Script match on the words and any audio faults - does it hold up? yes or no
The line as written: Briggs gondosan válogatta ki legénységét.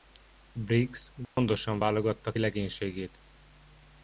no